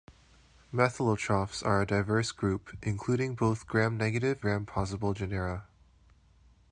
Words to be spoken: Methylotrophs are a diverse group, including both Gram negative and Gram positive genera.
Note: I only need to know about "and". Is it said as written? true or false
false